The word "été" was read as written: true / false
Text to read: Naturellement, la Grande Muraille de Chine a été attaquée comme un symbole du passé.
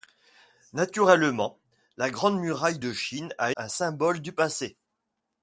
false